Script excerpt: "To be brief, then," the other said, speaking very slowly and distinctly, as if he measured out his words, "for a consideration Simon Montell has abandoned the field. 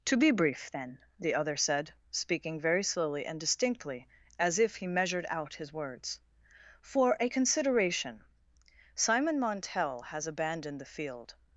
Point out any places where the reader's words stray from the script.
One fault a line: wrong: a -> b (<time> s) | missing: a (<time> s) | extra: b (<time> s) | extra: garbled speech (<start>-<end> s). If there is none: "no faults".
no faults